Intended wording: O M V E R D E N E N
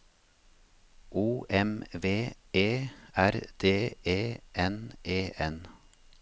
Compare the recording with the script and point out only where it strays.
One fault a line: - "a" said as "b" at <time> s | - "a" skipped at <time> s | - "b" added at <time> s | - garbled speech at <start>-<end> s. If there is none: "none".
none